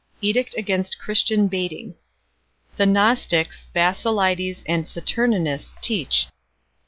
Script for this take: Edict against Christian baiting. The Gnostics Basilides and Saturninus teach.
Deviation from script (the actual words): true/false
false